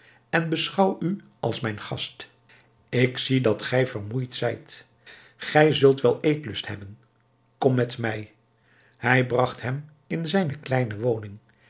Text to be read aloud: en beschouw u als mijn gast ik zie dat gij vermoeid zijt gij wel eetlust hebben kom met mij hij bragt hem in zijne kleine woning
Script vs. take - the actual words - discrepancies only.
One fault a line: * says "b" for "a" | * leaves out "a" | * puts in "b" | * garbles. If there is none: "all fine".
* puts in "zult"